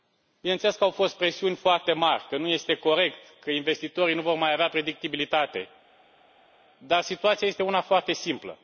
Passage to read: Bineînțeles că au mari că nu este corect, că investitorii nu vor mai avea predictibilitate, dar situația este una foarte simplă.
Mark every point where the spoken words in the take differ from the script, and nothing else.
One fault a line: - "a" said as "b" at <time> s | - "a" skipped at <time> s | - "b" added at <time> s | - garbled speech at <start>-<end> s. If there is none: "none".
- "fost presiuni foarte" added at 0.9 s